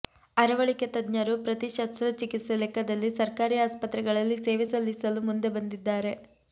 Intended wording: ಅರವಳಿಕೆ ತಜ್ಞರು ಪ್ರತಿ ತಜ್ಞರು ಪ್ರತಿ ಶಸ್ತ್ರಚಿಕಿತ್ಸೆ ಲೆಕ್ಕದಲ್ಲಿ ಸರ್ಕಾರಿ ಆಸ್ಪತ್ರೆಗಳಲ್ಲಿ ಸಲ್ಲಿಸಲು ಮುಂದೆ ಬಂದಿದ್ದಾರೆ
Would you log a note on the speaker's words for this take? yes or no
yes